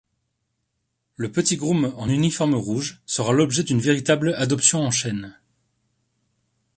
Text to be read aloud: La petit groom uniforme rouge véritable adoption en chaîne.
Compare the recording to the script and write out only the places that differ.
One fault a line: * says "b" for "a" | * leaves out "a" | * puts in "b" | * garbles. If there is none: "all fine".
* says "Le" for "La"
* puts in "en"
* puts in "sera l'objet d'une"